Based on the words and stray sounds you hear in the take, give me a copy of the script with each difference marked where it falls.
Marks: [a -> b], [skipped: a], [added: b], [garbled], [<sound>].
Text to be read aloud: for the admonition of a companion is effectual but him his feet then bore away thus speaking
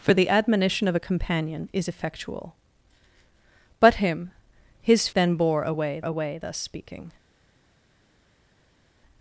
for the admonition of a companion is effectual but him his [skipped: feet] then bore away [added: away] thus speaking